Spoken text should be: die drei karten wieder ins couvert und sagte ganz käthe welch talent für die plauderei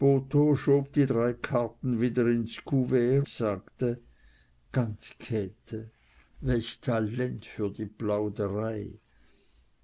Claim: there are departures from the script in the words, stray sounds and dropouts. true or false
true